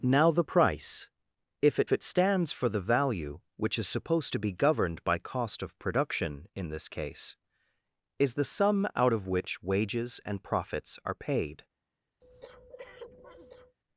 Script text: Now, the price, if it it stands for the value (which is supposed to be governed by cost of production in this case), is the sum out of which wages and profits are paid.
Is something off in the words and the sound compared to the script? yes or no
yes